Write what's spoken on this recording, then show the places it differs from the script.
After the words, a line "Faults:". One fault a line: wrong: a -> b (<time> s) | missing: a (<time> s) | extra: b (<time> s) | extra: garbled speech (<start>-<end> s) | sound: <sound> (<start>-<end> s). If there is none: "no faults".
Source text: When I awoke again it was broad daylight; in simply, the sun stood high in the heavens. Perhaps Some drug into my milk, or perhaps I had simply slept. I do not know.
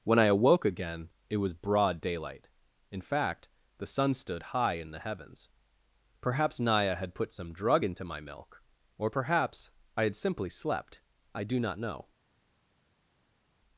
When I awoke again it was broad daylight; in fact, the sun stood high in the heavens. Perhaps Naya had put some drug into my milk, or perhaps I had simply slept. I do not know.
Faults:
wrong: simply -> fact (3.0 s)
extra: Naya had put (6.6 s)